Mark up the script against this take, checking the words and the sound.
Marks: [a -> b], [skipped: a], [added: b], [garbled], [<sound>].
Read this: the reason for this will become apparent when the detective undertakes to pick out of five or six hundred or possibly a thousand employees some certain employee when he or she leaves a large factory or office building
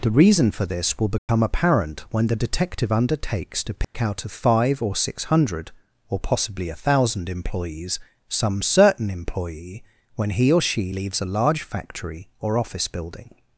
the reason for this will become [dropout] apparent when the detective undertakes to pick [dropout] out of five or six hundred or possibly a thousand employees some certain employee when he or she leaves a large factory or office building